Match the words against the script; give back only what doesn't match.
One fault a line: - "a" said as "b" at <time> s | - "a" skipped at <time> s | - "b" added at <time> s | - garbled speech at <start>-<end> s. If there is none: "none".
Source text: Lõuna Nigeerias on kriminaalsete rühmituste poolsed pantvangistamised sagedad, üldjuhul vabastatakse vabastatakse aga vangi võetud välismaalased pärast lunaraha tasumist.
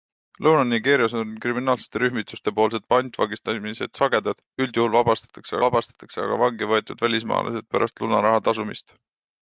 none